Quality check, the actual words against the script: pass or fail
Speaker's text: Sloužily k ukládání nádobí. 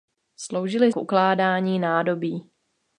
pass